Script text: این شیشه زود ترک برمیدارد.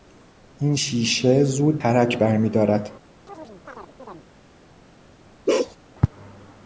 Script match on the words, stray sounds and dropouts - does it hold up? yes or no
no